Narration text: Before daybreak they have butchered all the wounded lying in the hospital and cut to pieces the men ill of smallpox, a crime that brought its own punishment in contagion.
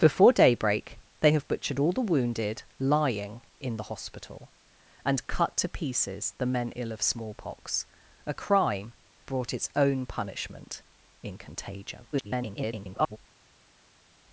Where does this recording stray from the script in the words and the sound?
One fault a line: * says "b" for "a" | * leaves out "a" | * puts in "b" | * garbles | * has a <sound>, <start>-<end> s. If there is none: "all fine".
* leaves out "that"
* garbles